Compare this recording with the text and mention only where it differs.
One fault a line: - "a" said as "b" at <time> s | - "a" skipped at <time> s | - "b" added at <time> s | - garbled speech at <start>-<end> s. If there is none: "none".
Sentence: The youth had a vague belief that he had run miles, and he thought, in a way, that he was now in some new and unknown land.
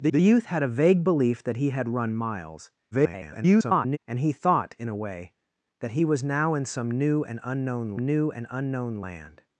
- "the" added at 0.1 s
- garbled speech at 2.9-4.0 s
- "new and unknown" added at 8.0 s